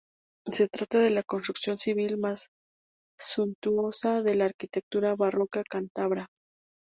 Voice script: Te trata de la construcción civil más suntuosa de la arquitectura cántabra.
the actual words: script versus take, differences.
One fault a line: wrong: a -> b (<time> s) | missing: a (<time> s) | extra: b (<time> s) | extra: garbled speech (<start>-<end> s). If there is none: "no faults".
wrong: Te -> Se (0.5 s)
extra: barroca (5.2 s)